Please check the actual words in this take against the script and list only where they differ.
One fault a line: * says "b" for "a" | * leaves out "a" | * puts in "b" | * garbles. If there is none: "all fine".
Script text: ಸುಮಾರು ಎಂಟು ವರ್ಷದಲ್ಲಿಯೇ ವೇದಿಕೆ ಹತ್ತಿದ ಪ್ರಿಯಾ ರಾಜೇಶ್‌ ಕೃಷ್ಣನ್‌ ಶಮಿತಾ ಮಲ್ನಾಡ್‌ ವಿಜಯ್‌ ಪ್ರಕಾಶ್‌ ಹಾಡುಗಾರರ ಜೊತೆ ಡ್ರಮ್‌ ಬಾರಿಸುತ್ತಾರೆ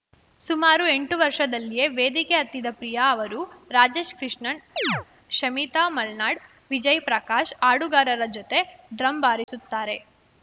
* puts in "ಅವರು"